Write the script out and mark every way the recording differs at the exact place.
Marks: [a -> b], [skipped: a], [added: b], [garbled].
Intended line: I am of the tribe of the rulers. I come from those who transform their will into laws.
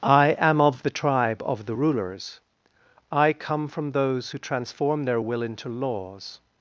I am of the tribe of the rulers. I come from those who transform their will into laws.